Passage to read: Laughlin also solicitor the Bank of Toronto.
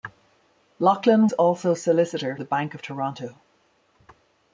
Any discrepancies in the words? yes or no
no